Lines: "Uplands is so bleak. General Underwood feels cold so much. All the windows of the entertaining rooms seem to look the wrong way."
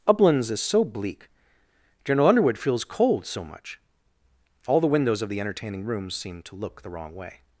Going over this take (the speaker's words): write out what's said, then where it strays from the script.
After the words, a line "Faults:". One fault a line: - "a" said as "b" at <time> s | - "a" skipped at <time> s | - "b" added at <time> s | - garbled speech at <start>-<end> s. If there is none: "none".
"Uplands is so bleak. General Underwood feels cold so much. All the windows of the entertaining rooms seem to look the wrong way."
Faults:
none